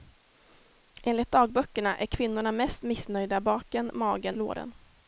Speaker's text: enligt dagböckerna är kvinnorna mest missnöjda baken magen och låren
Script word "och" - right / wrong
wrong